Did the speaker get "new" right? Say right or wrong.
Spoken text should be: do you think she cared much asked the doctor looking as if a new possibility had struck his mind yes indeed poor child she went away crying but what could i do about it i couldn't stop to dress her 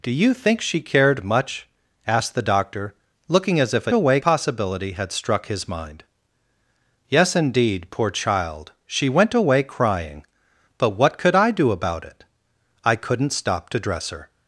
wrong